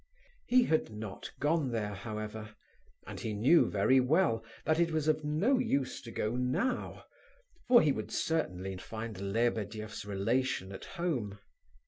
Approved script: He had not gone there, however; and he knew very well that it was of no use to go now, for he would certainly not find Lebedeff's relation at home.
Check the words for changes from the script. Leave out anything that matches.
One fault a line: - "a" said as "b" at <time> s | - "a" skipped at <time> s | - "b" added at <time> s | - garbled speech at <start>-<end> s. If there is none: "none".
- "not" skipped at 8.8 s